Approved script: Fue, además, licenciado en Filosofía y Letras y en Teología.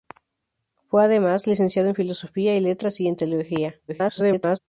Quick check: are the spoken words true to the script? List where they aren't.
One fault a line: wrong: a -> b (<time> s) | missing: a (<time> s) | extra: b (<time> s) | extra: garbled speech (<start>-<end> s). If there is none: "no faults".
extra: garbled speech (3.9-4.6 s)